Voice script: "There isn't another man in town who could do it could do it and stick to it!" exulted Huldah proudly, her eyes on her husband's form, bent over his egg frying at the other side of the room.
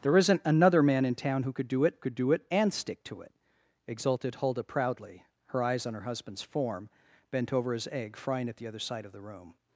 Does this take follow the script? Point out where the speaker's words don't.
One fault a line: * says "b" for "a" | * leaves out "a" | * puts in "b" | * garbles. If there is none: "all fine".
all fine